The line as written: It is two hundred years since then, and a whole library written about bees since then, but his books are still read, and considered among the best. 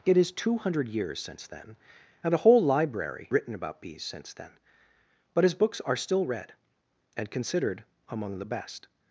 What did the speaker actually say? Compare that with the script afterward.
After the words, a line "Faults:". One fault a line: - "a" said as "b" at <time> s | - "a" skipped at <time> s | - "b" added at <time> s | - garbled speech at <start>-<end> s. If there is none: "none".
It is two hundred years since then, and a whole library written about bees since then, but his books are still read, and considered among the best.
Faults:
none